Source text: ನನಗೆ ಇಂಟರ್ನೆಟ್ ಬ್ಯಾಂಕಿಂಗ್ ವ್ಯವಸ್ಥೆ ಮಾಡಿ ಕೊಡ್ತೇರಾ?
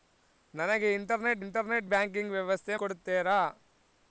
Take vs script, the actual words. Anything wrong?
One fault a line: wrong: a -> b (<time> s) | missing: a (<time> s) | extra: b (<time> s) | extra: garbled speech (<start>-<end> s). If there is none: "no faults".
extra: ಇಂಟರ್ನೆಟ್ (1.4 s)
missing: ಮಾಡಿ (2.8 s)